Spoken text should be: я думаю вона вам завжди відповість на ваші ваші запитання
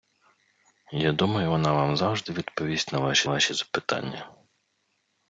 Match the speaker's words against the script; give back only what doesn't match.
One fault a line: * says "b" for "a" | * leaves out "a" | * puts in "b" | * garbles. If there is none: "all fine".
all fine